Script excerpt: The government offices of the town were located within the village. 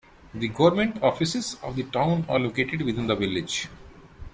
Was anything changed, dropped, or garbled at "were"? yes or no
yes